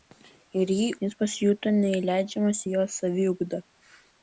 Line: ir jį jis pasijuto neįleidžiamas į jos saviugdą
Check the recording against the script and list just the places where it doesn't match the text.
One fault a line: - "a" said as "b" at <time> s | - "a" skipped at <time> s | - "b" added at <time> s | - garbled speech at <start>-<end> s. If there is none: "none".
none